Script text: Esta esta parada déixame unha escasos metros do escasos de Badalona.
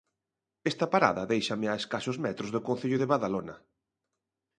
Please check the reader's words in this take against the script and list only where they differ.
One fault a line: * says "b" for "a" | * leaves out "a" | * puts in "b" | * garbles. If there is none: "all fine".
* leaves out "esta"
* says "a" for "unha"
* says "concello" for "escasos"